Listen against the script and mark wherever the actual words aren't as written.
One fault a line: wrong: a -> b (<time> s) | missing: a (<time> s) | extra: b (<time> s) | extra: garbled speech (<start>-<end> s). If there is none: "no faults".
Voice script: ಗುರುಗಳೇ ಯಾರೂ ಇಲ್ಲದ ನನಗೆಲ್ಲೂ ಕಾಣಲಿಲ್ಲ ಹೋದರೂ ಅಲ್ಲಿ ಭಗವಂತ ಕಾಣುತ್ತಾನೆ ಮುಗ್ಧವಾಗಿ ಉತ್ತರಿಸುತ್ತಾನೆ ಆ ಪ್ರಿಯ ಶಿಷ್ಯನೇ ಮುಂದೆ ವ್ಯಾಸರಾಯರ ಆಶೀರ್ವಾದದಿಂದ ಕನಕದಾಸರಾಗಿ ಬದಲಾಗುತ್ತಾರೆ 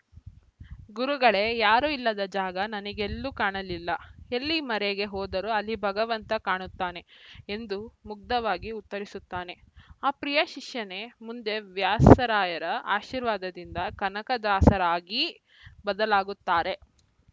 extra: ಜಾಗ (2.3 s)
extra: ಎಲ್ಲಿ ಮರೆಗೆ (4.3 s)
extra: ಎಂದು (7.5 s)